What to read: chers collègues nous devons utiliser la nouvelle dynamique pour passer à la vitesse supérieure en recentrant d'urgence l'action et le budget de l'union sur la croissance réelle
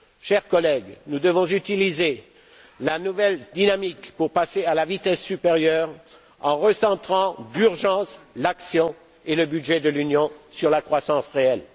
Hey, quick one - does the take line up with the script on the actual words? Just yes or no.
yes